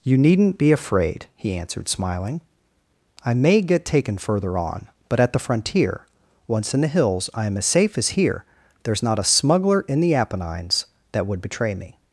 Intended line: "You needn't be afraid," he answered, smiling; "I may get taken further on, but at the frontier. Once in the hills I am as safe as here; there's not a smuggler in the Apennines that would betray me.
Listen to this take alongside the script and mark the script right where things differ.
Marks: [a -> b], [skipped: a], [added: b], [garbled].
"You needn't be afraid," he answered, smiling; "I may get taken further on, but at the frontier. Once in the hills I am as safe as here; there's not a smuggler in the Apennines that would betray me.